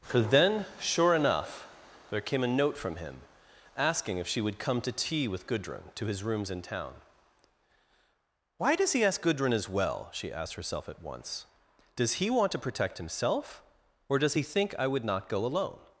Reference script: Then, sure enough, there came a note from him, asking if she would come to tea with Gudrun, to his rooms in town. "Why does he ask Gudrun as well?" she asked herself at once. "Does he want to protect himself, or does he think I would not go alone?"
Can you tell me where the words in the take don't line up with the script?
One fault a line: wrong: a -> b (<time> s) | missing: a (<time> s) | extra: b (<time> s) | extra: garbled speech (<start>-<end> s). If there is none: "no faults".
extra: for (0.0 s)